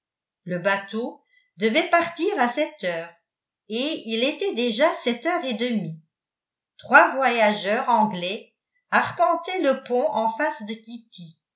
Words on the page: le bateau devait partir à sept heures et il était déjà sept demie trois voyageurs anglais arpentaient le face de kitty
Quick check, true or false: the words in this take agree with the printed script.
false